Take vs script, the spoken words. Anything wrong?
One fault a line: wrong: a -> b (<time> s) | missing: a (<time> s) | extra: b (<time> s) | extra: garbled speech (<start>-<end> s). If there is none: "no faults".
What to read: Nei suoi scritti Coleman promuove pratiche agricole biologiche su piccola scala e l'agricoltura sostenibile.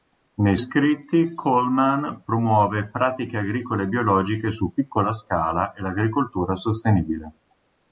missing: suoi (0.6 s)